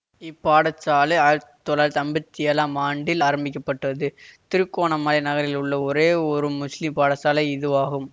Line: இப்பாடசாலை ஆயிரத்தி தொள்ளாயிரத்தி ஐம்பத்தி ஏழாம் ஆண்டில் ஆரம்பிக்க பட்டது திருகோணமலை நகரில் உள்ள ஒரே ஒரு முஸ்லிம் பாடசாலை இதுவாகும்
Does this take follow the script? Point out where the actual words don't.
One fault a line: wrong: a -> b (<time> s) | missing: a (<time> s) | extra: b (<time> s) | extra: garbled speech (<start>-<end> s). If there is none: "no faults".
no faults